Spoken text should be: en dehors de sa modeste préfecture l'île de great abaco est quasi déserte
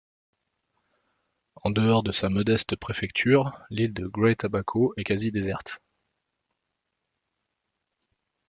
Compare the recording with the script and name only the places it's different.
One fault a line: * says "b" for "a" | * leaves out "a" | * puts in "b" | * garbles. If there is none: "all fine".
all fine